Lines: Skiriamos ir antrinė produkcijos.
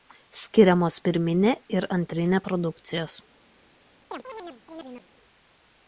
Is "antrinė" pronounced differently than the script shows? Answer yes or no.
no